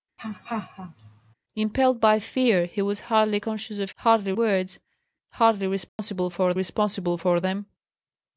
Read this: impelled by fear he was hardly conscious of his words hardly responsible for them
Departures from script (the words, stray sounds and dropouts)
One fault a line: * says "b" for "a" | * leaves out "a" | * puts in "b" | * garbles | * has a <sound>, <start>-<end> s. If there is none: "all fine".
* has a laugh, 0.2-1.3 s
* says "hardly" for "his"
* has a dropout, 5.9-6.0 s
* puts in "responsible for"